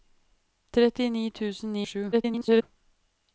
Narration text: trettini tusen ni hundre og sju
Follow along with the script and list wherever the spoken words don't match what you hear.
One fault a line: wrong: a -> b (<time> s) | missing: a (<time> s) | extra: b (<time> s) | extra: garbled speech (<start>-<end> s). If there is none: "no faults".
missing: hundre (1.8 s)
extra: garbled speech (2.1-2.6 s)